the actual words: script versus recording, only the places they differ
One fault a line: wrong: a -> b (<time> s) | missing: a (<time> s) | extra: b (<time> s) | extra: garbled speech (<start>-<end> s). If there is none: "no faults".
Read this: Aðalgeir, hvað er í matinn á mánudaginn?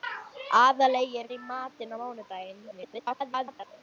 missing: hvað (1.3 s)
extra: garbled speech (2.7-3.7 s)